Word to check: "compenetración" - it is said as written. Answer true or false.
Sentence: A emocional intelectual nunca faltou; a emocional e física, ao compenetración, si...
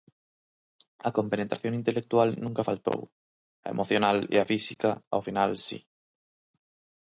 false